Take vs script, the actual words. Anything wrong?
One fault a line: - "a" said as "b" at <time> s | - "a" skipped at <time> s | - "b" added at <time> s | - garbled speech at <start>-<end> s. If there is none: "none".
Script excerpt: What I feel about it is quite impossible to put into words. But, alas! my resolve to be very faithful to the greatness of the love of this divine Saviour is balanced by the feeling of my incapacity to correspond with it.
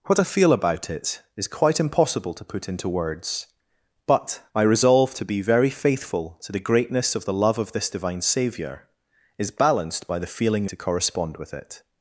- "alas" skipped at 4.4 s
- "of my incapacity" skipped at 10.7 s